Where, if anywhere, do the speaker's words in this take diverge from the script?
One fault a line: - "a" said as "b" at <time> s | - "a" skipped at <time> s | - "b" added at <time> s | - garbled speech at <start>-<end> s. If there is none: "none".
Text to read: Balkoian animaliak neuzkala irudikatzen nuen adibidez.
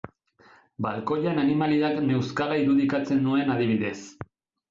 none